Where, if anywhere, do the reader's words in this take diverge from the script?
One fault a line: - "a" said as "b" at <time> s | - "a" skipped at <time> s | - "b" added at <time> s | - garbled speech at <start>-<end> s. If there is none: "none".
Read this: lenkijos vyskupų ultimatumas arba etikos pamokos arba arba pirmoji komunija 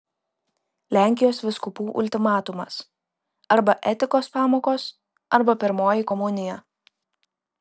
- "arba" skipped at 5.6 s